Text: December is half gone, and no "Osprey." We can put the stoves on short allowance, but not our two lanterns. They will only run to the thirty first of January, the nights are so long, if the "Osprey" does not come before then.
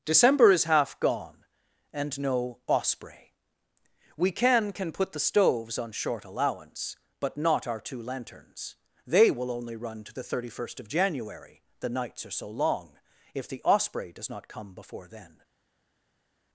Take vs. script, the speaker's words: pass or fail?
fail